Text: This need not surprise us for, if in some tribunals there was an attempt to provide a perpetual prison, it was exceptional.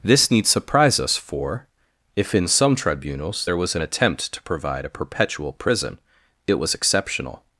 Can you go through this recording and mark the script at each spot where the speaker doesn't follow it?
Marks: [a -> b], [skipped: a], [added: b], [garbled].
This need [skipped: not] surprise us for, if in some tribunals there was an attempt to provide a perpetual prison, it was exceptional.